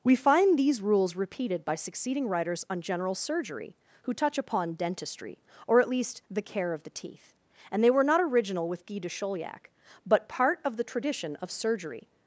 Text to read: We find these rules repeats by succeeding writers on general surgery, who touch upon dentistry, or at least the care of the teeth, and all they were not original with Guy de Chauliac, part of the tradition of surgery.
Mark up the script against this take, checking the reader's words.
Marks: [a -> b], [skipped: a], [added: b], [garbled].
We find these rules [repeats -> repeated] by succeeding writers on general surgery, who touch upon dentistry, or at least the care of the teeth, and [skipped: all] they were not original with Guy de Chauliac, [added: but] part of the tradition of surgery.